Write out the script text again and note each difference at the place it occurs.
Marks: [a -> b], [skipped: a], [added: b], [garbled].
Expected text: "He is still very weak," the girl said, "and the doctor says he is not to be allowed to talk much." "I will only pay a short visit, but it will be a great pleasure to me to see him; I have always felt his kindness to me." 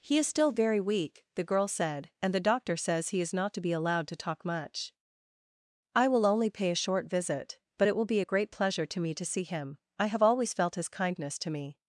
"He is still very weak," the girl said, "and the doctor says he is not to be allowed to talk much." "I will only pay a short visit, but it will be a great pleasure to me to see him; I have always felt his kindness to me."